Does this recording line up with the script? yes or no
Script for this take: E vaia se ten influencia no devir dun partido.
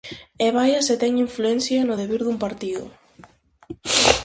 yes